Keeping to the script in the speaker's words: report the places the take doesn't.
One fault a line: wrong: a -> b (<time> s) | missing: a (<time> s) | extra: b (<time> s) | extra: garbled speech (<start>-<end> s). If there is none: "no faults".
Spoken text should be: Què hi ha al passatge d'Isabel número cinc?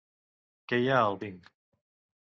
missing: passatge d'Isabel número (1.2 s)